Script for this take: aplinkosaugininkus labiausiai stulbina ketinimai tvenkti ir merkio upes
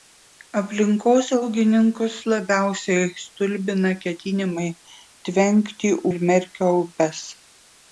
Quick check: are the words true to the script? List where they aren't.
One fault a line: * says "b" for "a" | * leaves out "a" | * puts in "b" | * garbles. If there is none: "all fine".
all fine